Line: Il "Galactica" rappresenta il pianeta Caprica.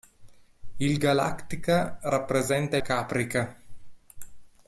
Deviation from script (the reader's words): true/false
true